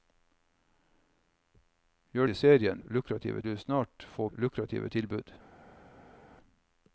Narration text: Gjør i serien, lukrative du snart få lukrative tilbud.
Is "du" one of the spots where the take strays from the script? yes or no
no